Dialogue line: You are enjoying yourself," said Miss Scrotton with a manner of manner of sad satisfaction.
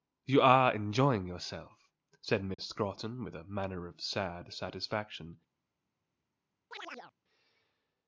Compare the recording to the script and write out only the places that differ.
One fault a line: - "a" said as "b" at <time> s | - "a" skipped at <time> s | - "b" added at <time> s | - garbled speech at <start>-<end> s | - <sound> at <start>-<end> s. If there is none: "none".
- dropout at 2.5-2.6 s
- "manner of" skipped at 4.0 s
- chirp at 6.7-7.1 s